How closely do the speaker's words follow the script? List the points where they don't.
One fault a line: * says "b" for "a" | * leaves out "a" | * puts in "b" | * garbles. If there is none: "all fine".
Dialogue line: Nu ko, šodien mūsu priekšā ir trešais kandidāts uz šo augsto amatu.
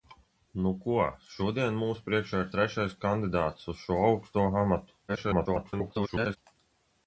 * garbles